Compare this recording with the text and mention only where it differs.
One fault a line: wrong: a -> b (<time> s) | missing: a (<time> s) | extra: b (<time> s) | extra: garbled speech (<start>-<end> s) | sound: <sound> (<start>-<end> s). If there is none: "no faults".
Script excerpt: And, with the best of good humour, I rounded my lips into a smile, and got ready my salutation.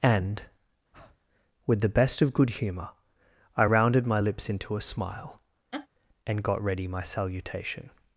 sound: breath (0.9-1.2 s)
sound: laugh (5.7-5.9 s)